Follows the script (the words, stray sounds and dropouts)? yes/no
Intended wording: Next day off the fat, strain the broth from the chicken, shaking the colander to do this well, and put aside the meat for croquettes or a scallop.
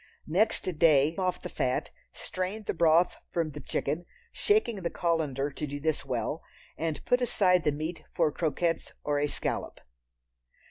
yes